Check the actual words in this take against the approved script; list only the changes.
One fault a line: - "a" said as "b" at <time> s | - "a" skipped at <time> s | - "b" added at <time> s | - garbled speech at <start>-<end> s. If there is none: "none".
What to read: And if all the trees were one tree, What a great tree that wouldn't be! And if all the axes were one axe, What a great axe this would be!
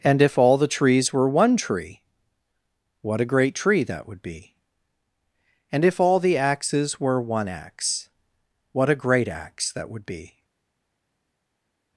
- "wouldn't" said as "would" at 4.1 s
- "this" said as "that" at 9.7 s